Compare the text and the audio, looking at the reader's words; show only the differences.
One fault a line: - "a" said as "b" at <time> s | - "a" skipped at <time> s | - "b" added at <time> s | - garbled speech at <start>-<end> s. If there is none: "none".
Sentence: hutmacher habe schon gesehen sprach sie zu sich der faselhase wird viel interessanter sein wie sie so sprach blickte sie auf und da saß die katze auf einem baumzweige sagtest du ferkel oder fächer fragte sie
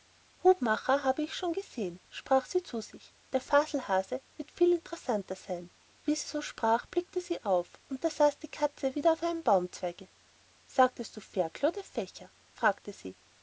- "ich" added at 1.2 s
- "wieder" added at 9.0 s